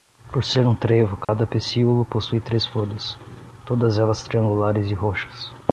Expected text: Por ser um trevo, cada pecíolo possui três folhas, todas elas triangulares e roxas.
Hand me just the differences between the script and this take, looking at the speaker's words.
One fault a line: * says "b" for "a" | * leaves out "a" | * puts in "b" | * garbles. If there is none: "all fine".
all fine